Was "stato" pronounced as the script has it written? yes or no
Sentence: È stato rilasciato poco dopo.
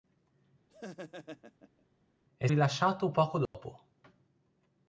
no